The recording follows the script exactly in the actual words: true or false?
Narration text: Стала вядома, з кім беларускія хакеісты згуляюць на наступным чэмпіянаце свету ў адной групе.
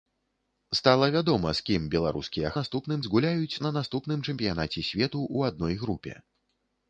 false